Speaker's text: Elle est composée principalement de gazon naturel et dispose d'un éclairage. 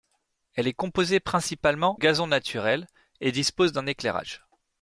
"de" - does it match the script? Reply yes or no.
no